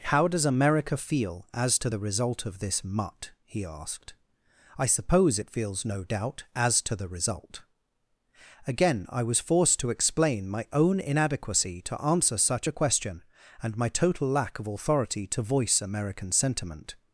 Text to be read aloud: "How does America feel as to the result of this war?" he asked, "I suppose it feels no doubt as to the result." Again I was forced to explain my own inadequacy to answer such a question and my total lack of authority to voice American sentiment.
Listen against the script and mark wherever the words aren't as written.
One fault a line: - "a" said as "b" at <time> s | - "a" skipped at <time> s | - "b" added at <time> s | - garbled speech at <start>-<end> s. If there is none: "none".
- "war" said as "mutt" at 2.8 s